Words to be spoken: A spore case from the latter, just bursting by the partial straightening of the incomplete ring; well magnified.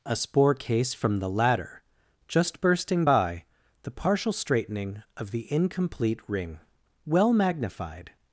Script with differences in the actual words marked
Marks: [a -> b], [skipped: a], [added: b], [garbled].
A spore case from the latter, just bursting by the partial straightening of the incomplete ring; well magnified.